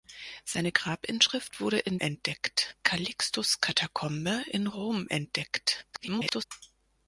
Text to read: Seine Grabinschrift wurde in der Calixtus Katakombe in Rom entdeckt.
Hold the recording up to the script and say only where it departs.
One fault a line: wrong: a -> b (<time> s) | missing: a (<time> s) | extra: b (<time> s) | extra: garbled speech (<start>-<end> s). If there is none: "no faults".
wrong: der -> entdeckt (2.0 s)
extra: garbled speech (5.9-6.4 s)